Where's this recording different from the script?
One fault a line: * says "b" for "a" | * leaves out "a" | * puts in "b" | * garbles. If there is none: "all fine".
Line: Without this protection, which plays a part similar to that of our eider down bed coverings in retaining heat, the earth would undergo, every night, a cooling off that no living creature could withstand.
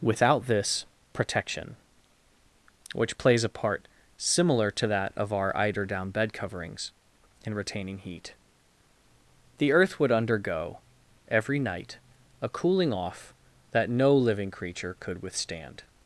all fine